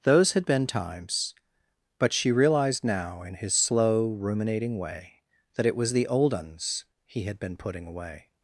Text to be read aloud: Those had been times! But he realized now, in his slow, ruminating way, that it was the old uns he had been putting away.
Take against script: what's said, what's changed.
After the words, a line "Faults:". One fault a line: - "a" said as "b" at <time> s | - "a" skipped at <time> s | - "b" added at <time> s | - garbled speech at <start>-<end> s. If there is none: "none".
Those had been times! But she realized now, in his slow, ruminating way, that it was the old uns he had been putting away.
Faults:
- "he" said as "she" at 2.1 s